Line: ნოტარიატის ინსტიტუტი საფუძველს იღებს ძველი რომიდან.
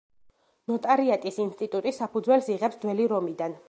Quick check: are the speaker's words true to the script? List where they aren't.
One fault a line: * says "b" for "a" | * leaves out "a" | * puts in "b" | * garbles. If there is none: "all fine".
all fine